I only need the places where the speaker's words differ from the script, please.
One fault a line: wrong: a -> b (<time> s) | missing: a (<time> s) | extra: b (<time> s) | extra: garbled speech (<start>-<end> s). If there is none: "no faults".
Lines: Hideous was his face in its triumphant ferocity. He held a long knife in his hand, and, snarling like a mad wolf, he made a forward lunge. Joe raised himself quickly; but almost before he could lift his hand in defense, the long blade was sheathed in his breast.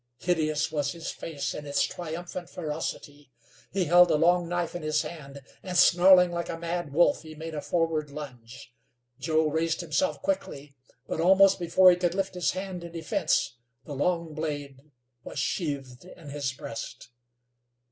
no faults